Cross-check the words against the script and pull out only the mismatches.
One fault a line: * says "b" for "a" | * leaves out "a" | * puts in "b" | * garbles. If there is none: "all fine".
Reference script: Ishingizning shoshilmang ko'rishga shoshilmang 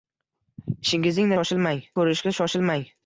all fine